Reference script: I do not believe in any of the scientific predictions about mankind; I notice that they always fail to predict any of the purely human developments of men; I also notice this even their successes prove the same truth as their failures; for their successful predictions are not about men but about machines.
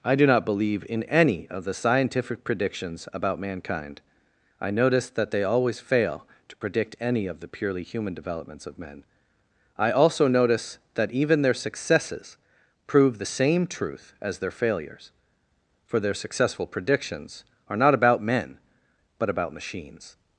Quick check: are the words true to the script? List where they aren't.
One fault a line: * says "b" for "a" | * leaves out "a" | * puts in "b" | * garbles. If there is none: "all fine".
* says "that" for "this"